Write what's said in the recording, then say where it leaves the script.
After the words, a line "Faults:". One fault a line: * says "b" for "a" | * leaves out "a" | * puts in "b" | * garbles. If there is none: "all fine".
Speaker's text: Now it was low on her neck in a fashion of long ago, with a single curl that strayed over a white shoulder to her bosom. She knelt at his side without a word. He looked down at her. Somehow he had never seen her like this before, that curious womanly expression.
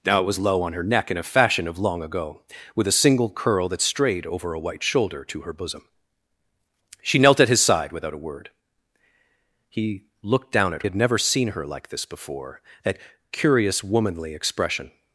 Now it was low on her neck in a fashion of long ago, with a single curl that strayed over a white shoulder to her bosom. She knelt at his side without a word. He looked down at had never seen her like this before, that curious womanly expression.
Faults:
* leaves out "her Somehow he"